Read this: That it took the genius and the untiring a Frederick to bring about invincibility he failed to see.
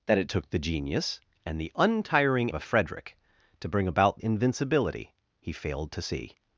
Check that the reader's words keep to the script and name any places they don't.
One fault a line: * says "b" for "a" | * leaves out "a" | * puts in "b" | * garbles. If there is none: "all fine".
all fine